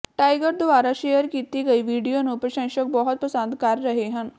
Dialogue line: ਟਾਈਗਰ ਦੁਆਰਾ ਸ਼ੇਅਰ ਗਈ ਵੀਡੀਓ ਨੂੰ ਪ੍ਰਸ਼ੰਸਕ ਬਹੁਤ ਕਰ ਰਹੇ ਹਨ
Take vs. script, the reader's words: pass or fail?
fail